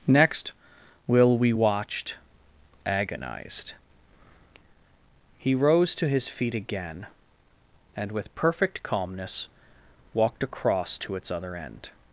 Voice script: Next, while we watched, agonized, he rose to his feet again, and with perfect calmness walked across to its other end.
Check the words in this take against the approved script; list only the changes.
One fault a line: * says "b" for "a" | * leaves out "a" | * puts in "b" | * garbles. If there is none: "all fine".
* says "will" for "while"